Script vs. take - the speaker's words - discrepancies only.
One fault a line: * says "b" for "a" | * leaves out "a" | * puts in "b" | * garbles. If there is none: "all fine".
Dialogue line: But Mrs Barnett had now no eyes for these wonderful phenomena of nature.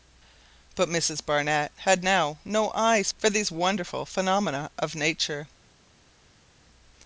all fine